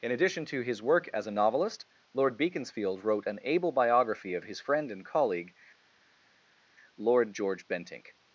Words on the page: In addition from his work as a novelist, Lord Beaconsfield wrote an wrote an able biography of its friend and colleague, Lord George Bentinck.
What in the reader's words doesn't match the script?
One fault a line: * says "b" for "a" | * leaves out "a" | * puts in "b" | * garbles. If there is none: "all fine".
* says "to" for "from"
* leaves out "wrote an"
* says "his" for "its"